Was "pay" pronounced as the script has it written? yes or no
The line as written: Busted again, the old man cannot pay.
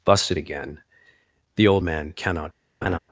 no